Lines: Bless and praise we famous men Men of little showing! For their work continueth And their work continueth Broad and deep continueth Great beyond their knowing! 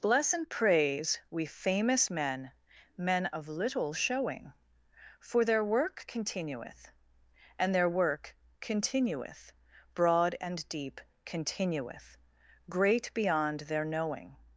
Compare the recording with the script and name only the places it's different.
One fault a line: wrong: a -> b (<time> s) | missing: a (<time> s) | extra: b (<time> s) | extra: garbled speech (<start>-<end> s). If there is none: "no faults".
no faults